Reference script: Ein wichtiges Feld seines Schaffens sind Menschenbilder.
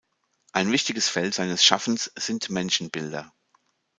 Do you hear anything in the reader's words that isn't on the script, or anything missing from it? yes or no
no